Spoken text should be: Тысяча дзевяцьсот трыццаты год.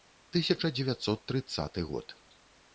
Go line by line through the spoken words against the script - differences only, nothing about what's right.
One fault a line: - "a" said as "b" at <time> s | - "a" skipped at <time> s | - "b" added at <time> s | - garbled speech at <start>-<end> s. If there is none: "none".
none